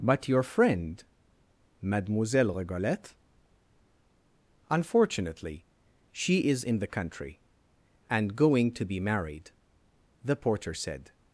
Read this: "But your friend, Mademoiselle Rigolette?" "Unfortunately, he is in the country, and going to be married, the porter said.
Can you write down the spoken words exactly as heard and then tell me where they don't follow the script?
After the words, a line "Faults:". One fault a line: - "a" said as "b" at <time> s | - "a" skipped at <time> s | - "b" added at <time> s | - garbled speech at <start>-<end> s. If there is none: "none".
"But your friend, Mademoiselle Rigolette?" "Unfortunately, she is in the country, and going to be married, the porter said.
Faults:
- "he" said as "she" at 6.1 s